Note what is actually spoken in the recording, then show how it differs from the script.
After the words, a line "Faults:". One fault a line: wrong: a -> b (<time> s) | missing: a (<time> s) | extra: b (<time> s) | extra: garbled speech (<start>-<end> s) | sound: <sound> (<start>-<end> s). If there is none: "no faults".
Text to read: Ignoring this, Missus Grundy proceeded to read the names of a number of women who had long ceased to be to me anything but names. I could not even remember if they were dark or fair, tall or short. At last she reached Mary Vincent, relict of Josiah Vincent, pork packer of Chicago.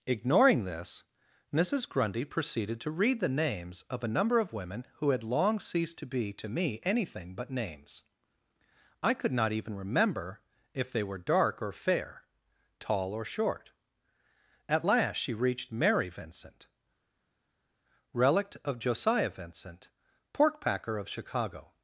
Ignoring this, Missus Grundy proceeded to read the names of a number of women who had long ceased to be to me anything but names. I could not even remember if they were dark or fair, tall or short. At last she reached Mary Vincent, relict of Josiah Vincent, pork packer of Chicago.
Faults:
no faults